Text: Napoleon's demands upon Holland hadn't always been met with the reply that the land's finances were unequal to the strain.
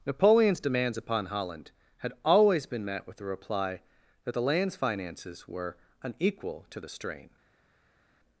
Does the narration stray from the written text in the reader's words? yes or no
yes